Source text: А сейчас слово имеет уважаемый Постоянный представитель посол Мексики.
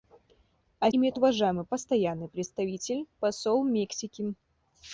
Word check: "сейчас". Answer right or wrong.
wrong